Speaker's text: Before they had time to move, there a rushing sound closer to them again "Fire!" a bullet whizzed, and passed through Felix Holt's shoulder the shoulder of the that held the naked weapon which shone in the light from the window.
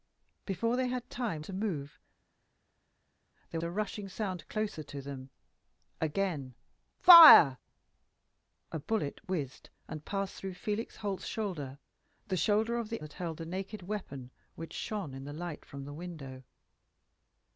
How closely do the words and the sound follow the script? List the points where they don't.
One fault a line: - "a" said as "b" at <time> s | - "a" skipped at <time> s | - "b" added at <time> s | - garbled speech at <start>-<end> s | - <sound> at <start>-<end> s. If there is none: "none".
none